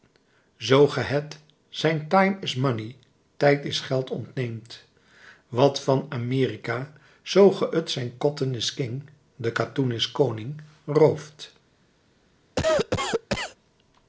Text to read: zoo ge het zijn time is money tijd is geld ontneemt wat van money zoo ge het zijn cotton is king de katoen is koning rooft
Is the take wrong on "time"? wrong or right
right